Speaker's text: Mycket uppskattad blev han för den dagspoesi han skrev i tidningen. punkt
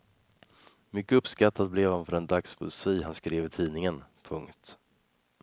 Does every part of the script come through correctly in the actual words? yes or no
yes